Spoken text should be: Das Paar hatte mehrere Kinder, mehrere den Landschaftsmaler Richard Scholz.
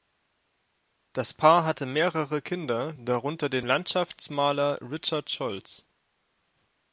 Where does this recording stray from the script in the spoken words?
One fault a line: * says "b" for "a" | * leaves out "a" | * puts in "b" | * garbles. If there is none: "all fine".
* says "darunter" for "mehrere"